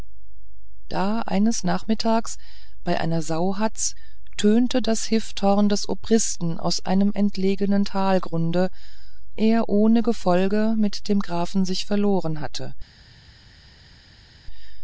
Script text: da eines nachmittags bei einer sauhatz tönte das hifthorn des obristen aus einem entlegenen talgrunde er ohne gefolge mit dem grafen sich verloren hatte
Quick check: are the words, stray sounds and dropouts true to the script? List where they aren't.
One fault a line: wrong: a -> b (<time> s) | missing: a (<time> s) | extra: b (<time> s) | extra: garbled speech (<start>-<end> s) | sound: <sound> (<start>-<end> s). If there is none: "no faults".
no faults